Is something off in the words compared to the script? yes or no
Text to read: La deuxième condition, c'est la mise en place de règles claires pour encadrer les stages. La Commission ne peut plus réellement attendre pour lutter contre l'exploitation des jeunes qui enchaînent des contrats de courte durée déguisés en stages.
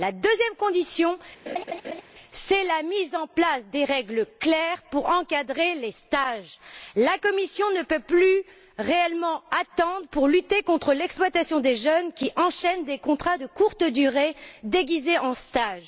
no